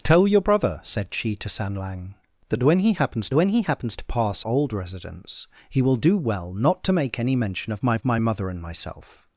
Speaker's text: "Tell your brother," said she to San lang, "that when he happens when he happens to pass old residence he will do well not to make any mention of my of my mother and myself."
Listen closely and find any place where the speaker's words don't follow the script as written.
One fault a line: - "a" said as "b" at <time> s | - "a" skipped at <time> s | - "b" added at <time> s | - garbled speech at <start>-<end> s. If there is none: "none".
none